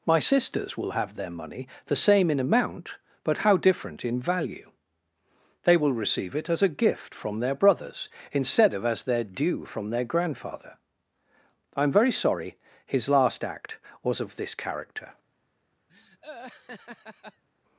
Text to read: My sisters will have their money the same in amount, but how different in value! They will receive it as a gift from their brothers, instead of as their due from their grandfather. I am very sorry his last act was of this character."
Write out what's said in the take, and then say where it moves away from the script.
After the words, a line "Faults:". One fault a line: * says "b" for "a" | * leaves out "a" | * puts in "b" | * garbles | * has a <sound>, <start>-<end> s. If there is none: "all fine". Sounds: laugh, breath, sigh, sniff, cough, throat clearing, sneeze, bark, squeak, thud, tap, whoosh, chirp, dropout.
My sisters will have their money the same in amount, but how different in value! They will receive it as a gift from their brothers, instead of as their due from their grandfather. I am very sorry his last act was of this character."
Faults:
* has a laugh, 15.9-17.4 s